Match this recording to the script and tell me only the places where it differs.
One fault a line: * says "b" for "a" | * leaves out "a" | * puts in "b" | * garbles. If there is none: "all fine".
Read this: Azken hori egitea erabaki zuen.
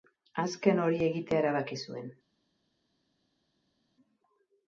all fine